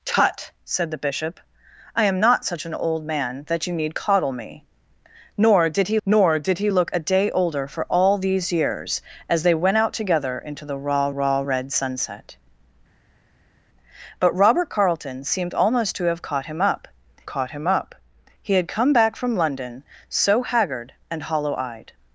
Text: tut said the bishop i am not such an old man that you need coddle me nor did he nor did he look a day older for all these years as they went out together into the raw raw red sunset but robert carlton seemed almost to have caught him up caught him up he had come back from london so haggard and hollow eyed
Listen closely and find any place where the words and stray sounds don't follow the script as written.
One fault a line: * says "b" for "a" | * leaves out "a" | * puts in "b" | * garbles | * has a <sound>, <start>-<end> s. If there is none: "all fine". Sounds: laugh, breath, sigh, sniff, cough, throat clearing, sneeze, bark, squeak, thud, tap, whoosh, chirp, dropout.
all fine